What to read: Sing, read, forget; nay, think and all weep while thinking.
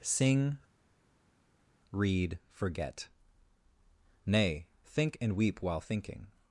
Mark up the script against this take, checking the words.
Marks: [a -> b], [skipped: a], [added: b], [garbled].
Sing, read, forget; nay, think and [skipped: all] weep while thinking.